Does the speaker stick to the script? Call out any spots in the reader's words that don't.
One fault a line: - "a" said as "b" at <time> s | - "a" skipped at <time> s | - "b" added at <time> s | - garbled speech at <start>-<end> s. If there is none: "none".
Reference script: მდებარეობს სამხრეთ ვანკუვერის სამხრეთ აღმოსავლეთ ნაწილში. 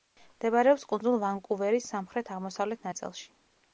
- "სამხრეთ" said as "კუნძულ" at 0.9 s